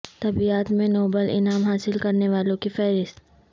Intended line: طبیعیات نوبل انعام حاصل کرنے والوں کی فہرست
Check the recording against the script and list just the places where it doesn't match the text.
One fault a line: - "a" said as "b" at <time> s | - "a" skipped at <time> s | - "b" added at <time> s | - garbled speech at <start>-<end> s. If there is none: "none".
- "میں" added at 0.7 s